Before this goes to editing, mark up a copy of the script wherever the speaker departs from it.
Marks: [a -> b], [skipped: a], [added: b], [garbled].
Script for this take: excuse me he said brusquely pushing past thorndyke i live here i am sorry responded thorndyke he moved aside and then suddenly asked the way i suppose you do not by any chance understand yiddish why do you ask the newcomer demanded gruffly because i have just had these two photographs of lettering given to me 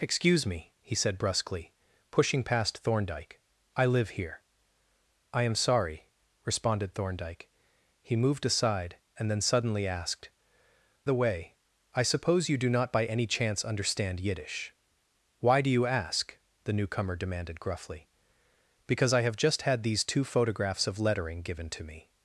excuse me he said brusquely pushing past thorndyke i live here i am sorry responded thorndyke he moved aside and then suddenly asked the way i suppose you do not by any chance understand yiddish why do you ask the newcomer demanded gruffly because i have just had these two photographs of lettering given to me